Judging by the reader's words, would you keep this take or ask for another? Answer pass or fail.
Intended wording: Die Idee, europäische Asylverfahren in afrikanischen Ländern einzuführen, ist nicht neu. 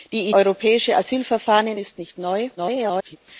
fail